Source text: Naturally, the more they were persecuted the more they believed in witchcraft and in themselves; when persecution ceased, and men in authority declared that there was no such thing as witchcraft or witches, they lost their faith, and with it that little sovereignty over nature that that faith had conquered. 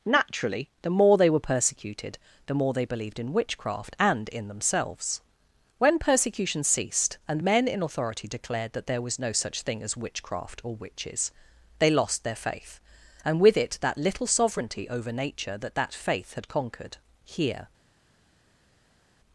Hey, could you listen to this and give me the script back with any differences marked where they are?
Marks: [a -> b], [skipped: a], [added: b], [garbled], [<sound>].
Naturally, the more they were persecuted the more they believed in witchcraft and in themselves; when persecution ceased, and men in authority declared that there was no such thing as witchcraft or witches, they lost their faith, and with it that little sovereignty over nature that that faith had conquered. [added: Here]